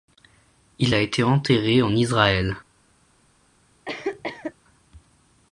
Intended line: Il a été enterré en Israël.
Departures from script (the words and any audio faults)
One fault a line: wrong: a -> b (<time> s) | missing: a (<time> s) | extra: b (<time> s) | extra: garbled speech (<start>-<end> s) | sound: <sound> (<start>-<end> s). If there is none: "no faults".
sound: cough (3.8-4.5 s)